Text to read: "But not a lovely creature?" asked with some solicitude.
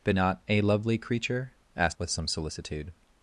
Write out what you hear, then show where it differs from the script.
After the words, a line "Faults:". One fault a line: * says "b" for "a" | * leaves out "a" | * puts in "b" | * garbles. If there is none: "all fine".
"But not a lovely creature?" asked with some solicitude.
Faults:
all fine